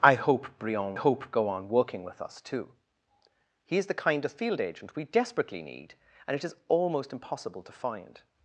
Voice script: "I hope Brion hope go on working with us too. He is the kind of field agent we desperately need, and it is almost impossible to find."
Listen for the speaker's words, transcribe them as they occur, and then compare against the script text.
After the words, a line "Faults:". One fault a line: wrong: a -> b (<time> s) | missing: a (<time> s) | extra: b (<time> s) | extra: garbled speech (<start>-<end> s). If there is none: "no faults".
"I hope Brion hope go on working with us too. He is the kind of field agent we desperately need, and it is almost impossible to find."
Faults:
no faults